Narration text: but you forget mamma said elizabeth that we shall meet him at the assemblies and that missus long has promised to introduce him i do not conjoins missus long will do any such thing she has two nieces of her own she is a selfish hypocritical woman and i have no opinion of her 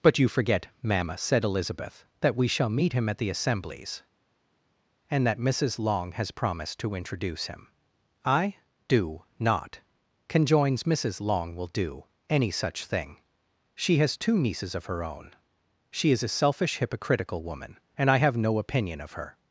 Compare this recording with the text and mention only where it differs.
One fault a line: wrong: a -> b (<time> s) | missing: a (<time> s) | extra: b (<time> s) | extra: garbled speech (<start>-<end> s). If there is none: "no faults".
no faults